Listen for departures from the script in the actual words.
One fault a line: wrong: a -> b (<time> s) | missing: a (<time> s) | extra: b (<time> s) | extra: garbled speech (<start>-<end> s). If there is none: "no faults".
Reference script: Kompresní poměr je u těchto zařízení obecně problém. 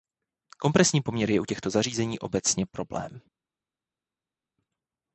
no faults